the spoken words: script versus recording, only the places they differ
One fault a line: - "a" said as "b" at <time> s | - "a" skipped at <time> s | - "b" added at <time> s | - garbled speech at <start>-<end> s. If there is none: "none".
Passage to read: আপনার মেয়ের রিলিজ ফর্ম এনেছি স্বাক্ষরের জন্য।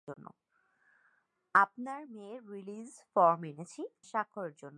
none